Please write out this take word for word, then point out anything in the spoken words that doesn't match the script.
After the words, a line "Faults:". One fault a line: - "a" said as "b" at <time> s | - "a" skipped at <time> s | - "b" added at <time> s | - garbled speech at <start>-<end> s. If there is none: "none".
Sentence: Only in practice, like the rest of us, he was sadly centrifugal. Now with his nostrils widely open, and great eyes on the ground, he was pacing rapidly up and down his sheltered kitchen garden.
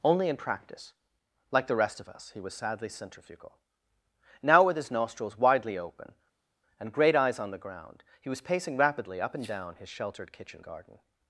Only in practice, like the rest of us, he was sadly centrifugal. Now with his nostrils widely open, and great eyes on the ground, he was pacing rapidly up and down his sheltered kitchen garden.
Faults:
none